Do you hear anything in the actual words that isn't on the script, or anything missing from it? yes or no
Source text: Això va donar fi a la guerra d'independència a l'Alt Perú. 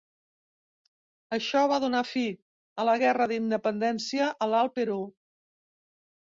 no